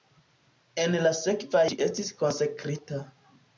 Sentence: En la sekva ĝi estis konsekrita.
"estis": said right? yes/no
yes